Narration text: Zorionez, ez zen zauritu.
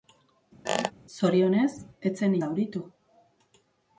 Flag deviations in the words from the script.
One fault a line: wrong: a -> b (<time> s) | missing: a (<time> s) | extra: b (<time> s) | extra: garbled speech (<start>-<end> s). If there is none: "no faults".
no faults